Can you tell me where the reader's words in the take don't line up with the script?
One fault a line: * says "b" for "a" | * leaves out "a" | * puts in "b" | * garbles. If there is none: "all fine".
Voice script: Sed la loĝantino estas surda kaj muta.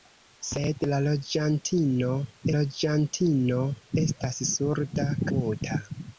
* puts in "loĝantino"
* leaves out "kaj"